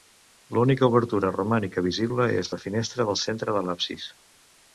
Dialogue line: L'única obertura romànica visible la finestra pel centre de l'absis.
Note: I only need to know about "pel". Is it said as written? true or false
false